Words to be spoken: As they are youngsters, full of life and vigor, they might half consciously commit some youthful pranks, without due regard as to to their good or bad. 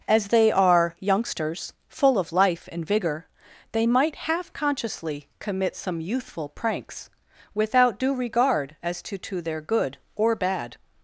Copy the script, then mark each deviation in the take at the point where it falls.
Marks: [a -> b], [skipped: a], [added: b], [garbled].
As they are youngsters, full of life and vigor, they might half consciously commit some youthful pranks, without due regard as to to their good or bad.